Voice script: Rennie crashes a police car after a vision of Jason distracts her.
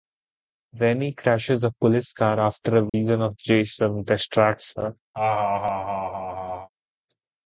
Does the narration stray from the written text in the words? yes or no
no